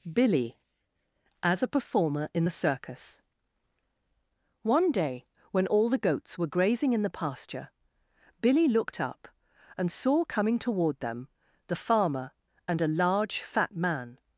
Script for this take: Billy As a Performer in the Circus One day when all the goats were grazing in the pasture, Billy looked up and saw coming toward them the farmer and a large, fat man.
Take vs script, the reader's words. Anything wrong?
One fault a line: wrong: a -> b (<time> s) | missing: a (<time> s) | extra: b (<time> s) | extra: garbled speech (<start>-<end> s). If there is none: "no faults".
no faults